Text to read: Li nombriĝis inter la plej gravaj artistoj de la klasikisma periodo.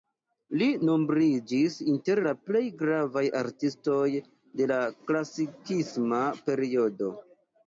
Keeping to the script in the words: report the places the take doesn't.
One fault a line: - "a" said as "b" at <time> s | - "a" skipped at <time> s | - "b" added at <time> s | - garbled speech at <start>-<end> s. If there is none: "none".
none